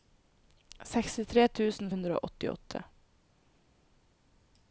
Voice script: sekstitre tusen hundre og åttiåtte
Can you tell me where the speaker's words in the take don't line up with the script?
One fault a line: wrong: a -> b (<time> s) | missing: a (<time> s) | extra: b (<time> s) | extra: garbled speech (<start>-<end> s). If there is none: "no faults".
no faults